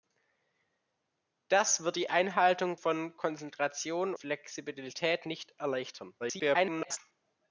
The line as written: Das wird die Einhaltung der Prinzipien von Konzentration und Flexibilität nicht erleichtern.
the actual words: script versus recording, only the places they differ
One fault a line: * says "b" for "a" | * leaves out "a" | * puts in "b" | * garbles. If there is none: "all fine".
* leaves out "der Prinzipien"
* leaves out "und"
* garbles